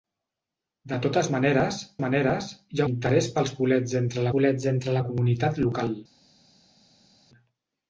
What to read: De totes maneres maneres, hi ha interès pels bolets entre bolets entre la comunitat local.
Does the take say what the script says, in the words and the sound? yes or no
yes